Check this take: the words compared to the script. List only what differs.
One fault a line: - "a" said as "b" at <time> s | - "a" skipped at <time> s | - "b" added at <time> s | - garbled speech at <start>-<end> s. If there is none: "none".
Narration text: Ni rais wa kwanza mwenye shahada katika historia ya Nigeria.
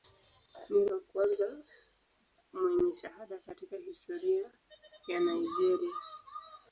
- "rais" skipped at 0.8 s